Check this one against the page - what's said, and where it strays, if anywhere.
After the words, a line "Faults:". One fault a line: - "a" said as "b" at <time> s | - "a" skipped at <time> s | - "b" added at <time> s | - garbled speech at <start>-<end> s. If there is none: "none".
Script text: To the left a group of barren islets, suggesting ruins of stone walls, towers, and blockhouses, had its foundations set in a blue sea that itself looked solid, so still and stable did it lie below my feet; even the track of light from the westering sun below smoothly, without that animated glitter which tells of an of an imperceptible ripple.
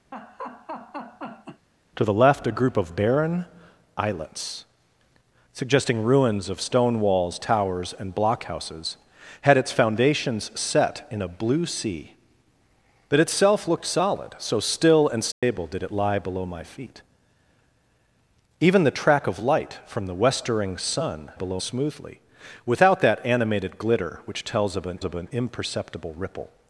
To the left a group of barren islets, suggesting ruins of stone walls, towers, and blockhouses, had its foundations set in a blue sea that itself looked solid, so still and stable did it lie below my feet; even the track of light from the westering sun below smoothly, without that animated glitter which tells of an of an imperceptible ripple.
Faults:
none